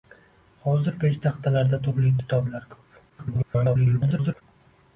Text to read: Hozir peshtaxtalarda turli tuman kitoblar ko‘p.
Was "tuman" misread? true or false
true